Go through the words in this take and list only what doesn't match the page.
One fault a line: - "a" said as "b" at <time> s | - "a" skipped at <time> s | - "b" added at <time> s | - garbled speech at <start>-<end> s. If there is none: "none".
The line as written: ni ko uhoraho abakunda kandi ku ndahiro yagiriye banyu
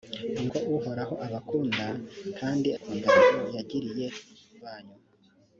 none